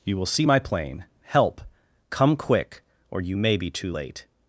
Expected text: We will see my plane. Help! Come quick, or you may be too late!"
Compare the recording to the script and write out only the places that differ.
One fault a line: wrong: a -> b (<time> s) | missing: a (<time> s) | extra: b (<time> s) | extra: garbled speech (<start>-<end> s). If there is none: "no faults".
wrong: We -> You (0.0 s)